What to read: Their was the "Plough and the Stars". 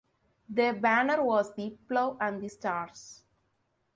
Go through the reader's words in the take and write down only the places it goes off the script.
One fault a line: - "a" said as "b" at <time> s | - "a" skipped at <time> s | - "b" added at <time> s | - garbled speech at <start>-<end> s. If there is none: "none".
- "banner" added at 0.7 s